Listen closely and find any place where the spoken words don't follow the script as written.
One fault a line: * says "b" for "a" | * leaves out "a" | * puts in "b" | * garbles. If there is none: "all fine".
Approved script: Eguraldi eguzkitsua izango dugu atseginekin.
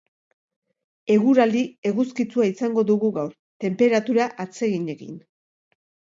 * puts in "gaur tenperatura"